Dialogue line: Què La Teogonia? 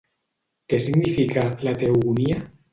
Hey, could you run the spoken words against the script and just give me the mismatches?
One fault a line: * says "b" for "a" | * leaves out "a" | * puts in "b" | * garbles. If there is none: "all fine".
* puts in "significa"